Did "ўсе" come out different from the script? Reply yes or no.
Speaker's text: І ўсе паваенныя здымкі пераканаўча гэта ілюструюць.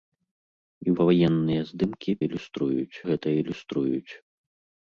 yes